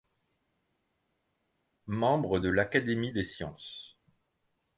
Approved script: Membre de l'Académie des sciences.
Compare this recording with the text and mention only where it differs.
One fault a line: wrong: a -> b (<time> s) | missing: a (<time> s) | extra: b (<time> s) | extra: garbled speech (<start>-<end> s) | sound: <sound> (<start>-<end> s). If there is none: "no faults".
no faults